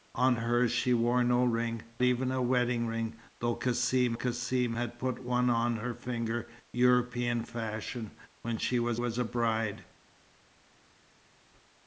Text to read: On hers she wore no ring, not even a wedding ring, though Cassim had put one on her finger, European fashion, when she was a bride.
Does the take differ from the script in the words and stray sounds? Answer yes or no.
yes